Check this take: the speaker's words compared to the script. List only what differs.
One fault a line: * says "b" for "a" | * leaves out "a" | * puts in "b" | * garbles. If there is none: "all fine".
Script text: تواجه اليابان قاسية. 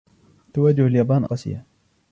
all fine